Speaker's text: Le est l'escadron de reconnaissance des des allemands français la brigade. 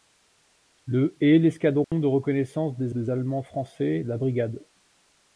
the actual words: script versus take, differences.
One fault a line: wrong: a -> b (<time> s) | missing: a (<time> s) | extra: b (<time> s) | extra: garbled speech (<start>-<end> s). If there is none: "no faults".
no faults